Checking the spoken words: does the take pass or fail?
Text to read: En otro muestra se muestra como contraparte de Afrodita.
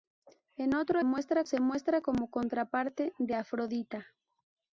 pass